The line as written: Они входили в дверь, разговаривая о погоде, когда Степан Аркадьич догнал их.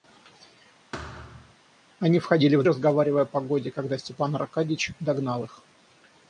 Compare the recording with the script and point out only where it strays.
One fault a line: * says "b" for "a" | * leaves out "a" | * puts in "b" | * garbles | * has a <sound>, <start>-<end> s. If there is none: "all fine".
* has a thud, 0.9-1.6 s
* leaves out "дверь"